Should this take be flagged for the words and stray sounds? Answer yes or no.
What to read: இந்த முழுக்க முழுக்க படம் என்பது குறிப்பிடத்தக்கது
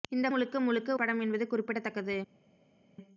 no